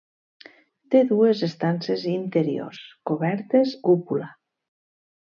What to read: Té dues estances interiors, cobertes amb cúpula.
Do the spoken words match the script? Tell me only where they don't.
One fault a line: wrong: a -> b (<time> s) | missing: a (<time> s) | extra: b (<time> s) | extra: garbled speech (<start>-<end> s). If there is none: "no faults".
missing: amb (3.8 s)